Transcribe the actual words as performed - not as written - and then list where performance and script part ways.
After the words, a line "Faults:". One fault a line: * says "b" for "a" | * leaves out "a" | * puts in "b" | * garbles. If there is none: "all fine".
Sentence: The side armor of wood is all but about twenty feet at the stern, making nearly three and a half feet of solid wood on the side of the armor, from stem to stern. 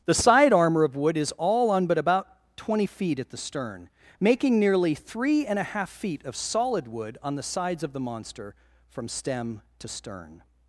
The side armor of wood is all on but about twenty feet at the stern, making nearly three and a half feet of solid wood on the sides of the monster, from stem to stern.
Faults:
* puts in "on"
* says "sides" for "side"
* says "monster" for "armor"